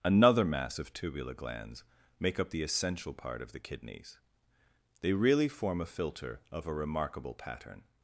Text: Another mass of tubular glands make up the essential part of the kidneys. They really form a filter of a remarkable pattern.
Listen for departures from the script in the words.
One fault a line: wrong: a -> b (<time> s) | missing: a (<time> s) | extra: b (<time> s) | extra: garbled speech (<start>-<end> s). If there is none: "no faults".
no faults